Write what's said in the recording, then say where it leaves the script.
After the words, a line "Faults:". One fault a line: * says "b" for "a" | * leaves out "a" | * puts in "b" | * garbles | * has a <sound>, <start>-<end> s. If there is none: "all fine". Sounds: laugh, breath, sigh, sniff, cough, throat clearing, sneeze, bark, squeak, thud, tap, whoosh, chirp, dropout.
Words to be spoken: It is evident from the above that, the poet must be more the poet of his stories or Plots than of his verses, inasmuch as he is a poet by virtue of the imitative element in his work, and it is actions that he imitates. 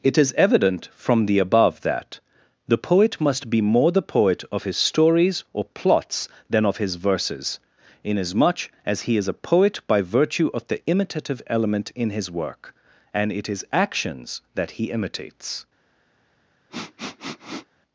It is evident from the above that, the poet must be more the poet of his stories or Plots than of his verses, inasmuch as he is a poet by virtue of the imitative element in his work, and it is actions that he imitates.
Faults:
* has a sniff, 16.7-17.7 s